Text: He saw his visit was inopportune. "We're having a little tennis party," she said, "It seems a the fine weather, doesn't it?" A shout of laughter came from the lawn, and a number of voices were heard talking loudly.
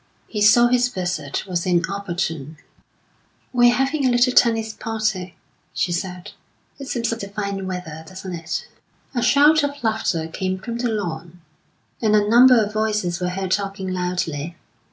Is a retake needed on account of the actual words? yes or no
no